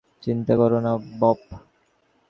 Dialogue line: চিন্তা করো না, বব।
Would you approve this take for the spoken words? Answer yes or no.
yes